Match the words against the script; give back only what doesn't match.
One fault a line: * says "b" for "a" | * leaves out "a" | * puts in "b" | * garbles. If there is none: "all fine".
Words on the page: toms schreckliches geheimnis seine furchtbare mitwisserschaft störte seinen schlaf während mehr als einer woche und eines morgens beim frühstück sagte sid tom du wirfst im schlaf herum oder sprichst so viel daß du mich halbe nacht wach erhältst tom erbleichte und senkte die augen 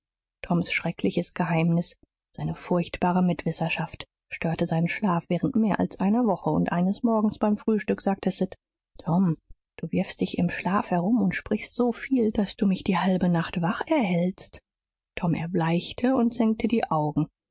* puts in "dich"
* says "und" for "oder"
* puts in "die"